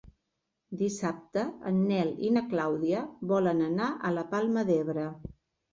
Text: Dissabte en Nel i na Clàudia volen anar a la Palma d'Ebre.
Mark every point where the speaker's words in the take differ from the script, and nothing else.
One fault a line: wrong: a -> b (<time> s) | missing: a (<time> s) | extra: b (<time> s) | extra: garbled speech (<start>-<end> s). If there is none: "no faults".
no faults